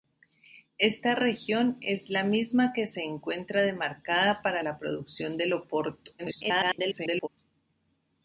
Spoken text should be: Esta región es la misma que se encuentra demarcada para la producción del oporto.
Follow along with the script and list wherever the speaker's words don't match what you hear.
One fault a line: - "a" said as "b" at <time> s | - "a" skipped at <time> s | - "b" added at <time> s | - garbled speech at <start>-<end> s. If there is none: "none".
- garbled speech at 6.2-7.3 s